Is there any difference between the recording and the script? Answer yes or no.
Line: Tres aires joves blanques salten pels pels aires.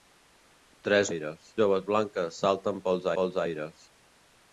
no